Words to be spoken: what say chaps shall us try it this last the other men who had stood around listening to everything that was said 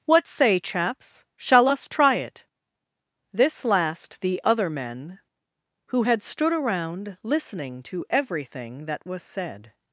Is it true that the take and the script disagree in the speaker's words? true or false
false